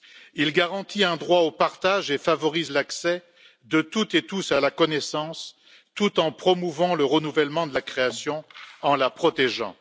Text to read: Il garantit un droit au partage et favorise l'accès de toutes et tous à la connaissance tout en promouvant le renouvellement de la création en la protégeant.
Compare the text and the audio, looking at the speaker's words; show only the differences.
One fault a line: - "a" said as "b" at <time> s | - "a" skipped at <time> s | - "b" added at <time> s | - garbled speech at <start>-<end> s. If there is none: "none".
none